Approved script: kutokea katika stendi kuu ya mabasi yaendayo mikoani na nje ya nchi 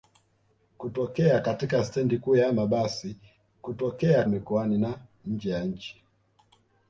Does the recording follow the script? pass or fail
fail